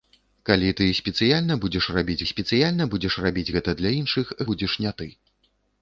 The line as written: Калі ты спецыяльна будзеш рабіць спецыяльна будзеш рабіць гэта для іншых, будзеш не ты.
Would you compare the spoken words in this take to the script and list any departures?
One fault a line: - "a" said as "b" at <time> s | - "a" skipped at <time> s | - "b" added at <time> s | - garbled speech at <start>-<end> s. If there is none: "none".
none